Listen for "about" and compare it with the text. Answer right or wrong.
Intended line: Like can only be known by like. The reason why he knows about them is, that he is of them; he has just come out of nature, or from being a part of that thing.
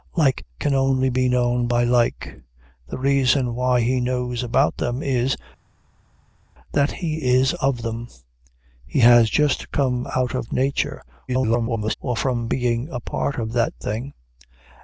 right